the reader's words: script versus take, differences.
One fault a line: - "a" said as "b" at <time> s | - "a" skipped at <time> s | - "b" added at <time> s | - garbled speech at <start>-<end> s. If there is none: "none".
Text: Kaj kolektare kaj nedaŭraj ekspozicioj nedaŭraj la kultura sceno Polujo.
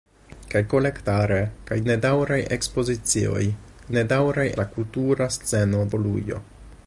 none